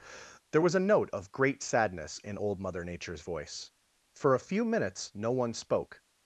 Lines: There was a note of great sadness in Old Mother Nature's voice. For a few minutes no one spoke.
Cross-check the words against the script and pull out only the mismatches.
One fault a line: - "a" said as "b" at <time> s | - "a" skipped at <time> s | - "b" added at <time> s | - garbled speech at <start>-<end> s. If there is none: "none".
none